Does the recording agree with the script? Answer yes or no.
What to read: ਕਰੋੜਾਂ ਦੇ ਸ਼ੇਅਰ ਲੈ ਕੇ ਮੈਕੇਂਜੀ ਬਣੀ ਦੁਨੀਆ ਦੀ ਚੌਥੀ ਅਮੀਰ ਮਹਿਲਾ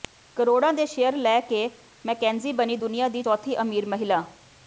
yes